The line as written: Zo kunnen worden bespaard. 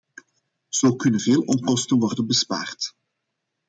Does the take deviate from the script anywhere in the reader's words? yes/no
yes